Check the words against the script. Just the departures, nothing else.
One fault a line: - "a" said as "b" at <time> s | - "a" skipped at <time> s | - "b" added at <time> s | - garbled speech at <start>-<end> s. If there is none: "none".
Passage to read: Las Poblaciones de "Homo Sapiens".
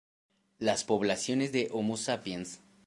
none